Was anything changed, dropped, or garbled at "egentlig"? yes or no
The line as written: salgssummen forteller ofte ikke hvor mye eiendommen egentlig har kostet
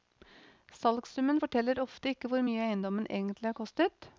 no